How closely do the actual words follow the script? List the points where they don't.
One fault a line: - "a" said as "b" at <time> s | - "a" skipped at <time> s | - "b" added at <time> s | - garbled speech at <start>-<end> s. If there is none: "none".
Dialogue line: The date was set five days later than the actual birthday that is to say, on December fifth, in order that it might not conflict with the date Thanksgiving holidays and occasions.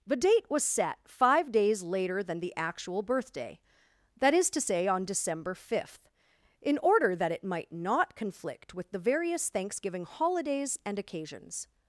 - "date" said as "various" at 9.0 s